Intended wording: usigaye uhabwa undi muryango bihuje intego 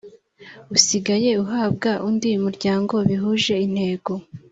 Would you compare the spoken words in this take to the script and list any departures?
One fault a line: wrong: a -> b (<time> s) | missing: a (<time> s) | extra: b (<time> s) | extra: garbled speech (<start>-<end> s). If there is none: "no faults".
no faults